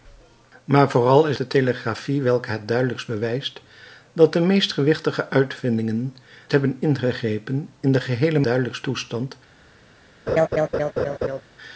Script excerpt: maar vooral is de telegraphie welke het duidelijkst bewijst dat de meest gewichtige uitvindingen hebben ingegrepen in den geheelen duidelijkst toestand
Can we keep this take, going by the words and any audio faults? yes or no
no